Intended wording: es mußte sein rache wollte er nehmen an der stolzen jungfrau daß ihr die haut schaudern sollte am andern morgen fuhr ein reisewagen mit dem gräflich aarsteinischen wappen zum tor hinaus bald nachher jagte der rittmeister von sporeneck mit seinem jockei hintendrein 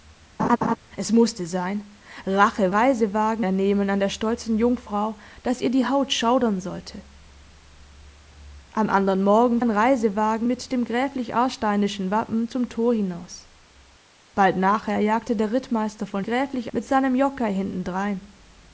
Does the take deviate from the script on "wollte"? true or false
true